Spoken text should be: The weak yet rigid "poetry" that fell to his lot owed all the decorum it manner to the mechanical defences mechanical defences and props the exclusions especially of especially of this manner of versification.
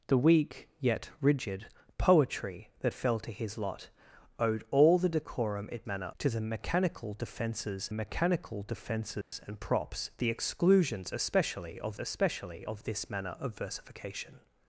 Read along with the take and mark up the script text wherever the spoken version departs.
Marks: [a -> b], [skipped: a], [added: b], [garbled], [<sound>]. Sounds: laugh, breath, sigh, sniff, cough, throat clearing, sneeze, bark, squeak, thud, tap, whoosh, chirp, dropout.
The weak yet rigid "poetry" that fell to his lot owed all the decorum it manner to the mechanical defences mechanical defences [dropout] and props the exclusions especially of especially of this manner of versification.